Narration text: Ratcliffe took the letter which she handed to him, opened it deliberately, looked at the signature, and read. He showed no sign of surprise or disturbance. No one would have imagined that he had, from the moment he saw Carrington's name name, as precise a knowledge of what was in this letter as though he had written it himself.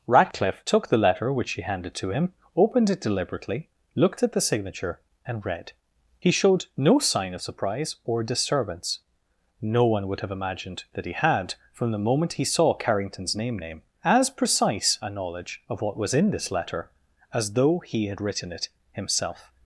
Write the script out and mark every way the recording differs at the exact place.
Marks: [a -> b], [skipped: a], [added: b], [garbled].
Ratcliffe took the letter which she handed to him, opened it deliberately, looked at the signature, and read. He showed no sign of surprise or disturbance. No one would have imagined that he had, from the moment he saw Carrington's name name, as precise a knowledge of what was in this letter as though he had written it himself.